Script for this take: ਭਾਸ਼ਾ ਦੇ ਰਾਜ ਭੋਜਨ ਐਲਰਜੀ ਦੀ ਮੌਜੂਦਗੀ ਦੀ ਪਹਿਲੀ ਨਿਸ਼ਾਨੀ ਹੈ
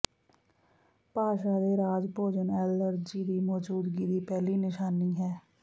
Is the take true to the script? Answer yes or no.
yes